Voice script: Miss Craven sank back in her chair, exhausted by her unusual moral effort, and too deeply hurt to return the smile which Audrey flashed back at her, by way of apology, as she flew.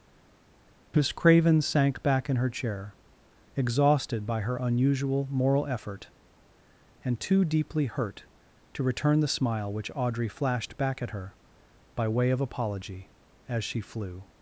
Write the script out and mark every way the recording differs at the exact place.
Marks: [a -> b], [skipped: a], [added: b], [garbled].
Miss Craven sank back in her chair, exhausted by her unusual moral effort, and too deeply hurt to return the smile which Audrey flashed back at her, by way of apology, as she flew.